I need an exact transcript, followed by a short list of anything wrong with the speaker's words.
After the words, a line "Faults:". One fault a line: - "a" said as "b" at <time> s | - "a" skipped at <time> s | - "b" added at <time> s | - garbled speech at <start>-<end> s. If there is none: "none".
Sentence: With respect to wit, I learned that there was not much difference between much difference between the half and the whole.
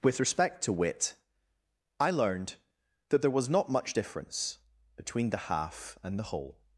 With respect to wit, I learned that there was not much difference between the half and the whole.
Faults:
- "much difference between" skipped at 5.3 s